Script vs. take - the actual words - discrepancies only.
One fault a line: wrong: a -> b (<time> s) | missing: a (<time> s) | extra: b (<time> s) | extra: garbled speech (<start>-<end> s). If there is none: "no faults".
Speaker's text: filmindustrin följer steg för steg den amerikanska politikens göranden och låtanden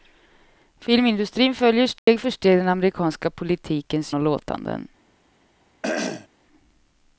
missing: göranden (4.1 s)